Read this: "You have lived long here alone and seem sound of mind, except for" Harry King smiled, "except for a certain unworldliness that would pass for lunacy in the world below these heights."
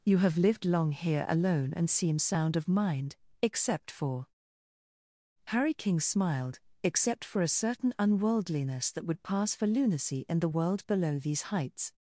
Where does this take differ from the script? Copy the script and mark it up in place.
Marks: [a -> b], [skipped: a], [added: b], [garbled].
"You have lived long here alone and seem sound of mind, except for" Harry King smiled, "except for a certain unworldliness that would pass for lunacy in the world below these heights."